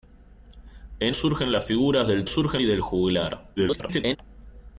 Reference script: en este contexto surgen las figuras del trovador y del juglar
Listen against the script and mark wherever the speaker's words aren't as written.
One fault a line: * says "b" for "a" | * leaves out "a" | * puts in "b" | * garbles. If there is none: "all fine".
* leaves out "este contexto"
* says "surgen" for "trovador"
* garbles